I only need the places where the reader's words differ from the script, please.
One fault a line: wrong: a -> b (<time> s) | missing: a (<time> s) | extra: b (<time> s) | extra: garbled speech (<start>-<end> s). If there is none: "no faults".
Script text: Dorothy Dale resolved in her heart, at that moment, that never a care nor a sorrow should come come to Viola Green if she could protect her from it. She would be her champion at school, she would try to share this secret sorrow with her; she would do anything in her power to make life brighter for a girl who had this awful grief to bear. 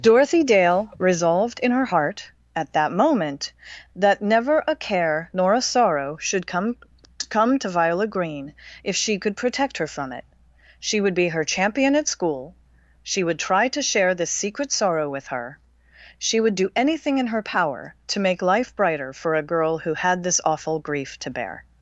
no faults